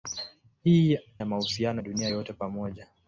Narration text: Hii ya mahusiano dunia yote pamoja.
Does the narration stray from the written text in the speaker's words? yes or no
no